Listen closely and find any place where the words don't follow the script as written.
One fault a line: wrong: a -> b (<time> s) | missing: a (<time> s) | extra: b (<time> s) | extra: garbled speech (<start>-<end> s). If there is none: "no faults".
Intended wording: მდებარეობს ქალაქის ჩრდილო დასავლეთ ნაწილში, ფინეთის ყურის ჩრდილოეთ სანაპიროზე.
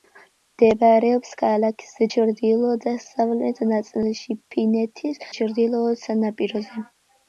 missing: ყურის (5.2 s)